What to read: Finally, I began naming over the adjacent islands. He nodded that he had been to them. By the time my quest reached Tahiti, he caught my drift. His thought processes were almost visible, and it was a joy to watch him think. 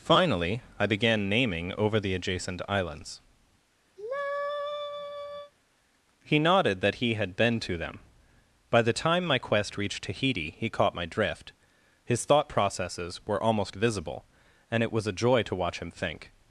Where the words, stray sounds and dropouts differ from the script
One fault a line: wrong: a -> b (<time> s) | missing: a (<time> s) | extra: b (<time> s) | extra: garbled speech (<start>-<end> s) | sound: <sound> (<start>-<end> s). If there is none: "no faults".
sound: sigh (4.0-5.5 s)